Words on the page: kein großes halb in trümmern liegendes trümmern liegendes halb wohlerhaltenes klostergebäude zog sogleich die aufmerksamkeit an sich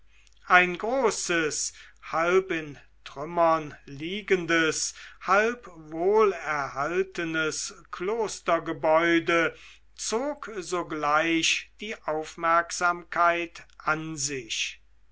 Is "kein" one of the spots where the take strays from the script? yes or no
yes